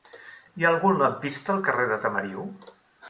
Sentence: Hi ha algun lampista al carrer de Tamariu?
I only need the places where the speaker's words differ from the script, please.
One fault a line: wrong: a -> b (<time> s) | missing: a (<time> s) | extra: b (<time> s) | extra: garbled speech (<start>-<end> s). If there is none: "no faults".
no faults